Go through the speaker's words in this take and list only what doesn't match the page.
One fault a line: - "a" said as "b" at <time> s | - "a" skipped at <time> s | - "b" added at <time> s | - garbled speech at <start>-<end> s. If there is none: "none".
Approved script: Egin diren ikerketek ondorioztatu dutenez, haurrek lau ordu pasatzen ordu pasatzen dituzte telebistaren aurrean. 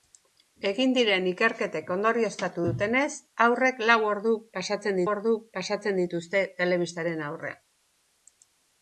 none